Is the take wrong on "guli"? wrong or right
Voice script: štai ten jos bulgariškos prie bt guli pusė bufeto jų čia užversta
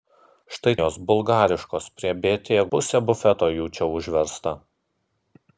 wrong